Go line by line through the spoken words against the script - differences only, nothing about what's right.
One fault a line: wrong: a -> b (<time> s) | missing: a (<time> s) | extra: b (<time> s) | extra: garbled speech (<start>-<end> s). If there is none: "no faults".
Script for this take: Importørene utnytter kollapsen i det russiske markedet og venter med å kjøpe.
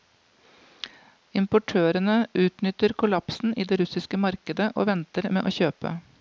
no faults